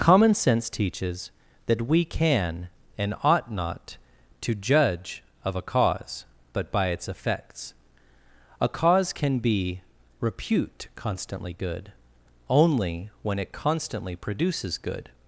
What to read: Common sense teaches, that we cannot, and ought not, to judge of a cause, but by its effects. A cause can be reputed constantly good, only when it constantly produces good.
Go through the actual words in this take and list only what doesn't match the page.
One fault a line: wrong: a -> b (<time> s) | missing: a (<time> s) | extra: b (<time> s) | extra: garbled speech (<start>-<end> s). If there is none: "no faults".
wrong: cannot -> can (2.0 s)
wrong: reputed -> repute (10.2 s)